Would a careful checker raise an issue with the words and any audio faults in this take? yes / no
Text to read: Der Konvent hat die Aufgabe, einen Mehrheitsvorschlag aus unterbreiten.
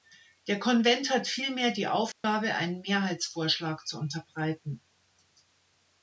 yes